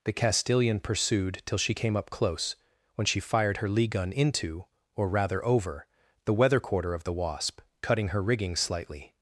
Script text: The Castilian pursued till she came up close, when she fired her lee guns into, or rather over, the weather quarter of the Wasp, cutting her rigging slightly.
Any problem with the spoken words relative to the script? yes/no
yes